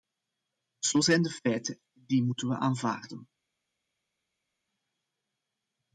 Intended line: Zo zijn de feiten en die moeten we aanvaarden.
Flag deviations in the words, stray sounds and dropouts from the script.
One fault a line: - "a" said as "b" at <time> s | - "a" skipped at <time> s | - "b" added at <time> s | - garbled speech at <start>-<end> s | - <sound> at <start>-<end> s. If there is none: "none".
none